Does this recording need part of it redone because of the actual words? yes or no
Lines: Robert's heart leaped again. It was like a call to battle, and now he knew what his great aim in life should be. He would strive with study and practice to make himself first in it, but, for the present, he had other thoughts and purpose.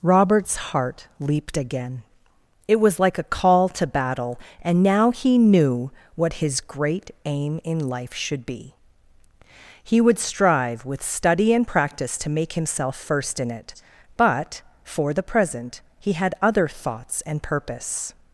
no